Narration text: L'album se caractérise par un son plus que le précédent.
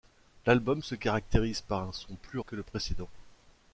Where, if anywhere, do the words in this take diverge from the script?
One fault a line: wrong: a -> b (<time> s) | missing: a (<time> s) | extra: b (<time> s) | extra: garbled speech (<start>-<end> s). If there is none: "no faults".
no faults